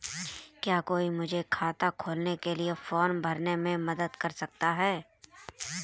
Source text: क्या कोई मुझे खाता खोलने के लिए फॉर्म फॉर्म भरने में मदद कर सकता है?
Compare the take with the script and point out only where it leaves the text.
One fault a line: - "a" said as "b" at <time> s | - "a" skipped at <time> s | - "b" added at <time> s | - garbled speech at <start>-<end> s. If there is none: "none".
- "फॉर्म" skipped at 3.2 s